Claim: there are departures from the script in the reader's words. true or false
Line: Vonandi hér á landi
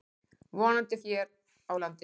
false